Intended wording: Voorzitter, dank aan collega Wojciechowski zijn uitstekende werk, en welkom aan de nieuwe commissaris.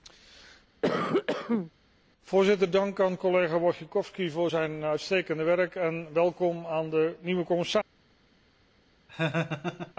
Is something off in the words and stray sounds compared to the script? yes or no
yes